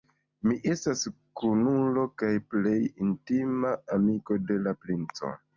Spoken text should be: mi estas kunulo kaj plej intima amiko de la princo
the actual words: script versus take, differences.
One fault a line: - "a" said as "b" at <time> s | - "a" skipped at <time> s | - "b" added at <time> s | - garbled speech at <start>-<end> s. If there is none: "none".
none